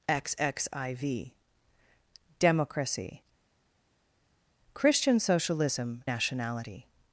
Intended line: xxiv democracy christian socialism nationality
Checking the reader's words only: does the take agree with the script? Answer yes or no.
yes